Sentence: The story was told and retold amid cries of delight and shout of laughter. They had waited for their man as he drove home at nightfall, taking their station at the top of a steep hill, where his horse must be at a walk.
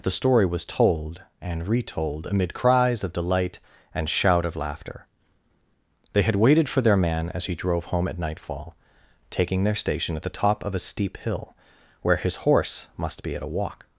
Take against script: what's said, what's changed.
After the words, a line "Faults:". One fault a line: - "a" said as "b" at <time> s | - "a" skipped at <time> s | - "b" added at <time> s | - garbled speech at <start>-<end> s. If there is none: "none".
The story was told and retold amid cries of delight and shout of laughter. They had waited for their man as he drove home at nightfall, taking their station at the top of a steep hill, where his horse must be at a walk.
Faults:
none